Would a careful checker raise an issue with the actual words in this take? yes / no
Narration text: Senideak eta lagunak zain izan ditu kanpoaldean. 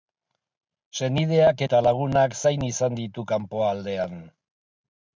no